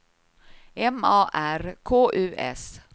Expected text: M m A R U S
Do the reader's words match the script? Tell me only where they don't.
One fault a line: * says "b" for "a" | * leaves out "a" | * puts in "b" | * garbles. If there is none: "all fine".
* leaves out "m"
* puts in "K"